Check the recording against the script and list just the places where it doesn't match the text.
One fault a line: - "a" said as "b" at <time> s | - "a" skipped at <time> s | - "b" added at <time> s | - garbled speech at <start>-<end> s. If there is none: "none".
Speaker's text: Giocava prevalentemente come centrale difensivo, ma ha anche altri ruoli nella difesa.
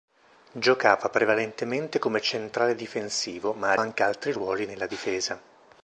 none